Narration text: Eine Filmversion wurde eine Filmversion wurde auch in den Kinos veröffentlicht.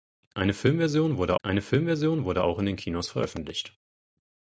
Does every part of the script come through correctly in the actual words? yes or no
yes